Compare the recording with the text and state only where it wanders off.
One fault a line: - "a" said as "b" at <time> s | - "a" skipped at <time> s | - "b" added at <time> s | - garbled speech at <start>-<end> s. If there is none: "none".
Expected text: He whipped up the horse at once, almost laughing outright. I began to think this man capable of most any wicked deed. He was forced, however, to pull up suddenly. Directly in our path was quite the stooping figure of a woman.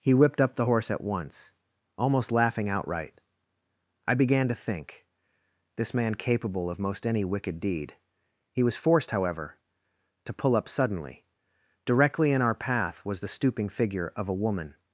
- "quite" skipped at 13.2 s